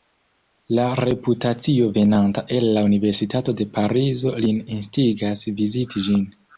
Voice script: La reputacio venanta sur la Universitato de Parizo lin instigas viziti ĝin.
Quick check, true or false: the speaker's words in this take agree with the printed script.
false